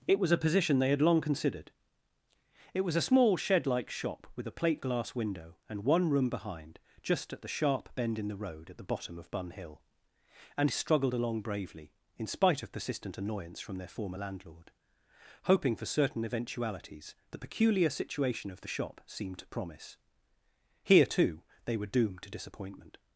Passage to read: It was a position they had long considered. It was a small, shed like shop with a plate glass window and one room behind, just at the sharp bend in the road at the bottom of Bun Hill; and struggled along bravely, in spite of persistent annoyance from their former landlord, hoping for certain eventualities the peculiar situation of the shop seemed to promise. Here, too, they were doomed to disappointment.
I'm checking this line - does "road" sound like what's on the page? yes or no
yes